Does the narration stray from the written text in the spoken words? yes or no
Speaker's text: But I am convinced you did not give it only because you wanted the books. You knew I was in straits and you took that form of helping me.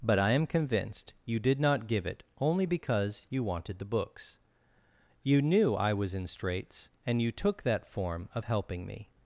no